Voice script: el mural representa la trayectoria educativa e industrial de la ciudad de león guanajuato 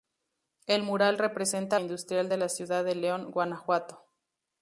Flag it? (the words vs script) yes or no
yes